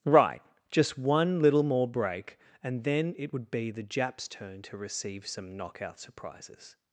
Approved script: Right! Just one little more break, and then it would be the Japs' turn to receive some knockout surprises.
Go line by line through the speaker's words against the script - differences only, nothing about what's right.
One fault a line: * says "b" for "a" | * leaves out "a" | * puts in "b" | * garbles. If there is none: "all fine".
all fine